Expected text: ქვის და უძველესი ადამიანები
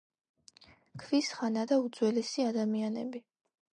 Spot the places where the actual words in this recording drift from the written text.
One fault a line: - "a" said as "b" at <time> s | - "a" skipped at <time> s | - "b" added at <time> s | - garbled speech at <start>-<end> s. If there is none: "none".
- "ხანა" added at 1.4 s